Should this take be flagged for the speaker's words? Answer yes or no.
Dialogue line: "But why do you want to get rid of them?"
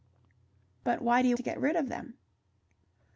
yes